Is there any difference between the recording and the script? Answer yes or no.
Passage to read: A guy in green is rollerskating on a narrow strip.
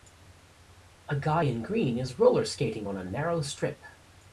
no